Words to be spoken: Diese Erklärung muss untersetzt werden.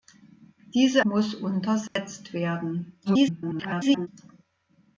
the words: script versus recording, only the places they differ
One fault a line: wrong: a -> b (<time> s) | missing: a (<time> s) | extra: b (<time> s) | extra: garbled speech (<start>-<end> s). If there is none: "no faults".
missing: Erklärung (1.0 s)
extra: garbled speech (3.1-4.1 s)